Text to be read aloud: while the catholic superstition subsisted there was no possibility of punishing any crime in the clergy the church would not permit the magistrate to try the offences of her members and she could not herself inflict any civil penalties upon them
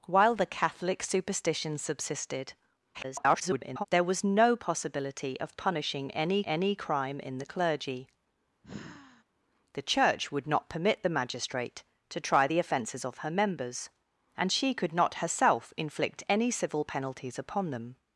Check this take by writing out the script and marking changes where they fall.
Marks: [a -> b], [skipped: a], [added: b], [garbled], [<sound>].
while the catholic superstition subsisted [garbled] there was no possibility of punishing any [added: any] crime in the clergy [sigh] the church would not permit the magistrate to try the offences of her members and she could not herself inflict any civil penalties upon them